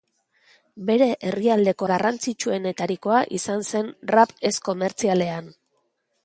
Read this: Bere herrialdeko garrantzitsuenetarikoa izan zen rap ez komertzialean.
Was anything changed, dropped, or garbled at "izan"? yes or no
no